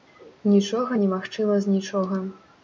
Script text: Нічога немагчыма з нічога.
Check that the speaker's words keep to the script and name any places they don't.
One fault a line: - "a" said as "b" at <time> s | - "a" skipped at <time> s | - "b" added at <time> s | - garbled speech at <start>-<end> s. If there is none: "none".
none